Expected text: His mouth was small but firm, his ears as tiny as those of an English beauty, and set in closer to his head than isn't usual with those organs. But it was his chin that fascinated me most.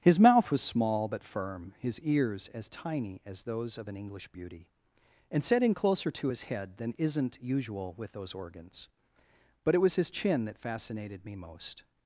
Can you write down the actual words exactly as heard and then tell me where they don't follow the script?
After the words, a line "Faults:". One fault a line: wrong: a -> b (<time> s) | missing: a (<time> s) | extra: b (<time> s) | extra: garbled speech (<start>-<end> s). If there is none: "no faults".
His mouth was small but firm, his ears as tiny as those of an English beauty, and set in closer to his head than isn't usual with those organs. But it was his chin that fascinated me most.
Faults:
no faults